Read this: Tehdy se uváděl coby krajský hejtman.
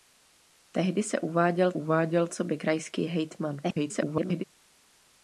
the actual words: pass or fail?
fail